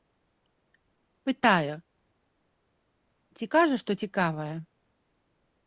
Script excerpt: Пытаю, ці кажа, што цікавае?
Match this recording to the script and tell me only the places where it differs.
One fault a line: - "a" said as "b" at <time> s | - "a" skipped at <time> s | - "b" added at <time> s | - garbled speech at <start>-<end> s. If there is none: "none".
none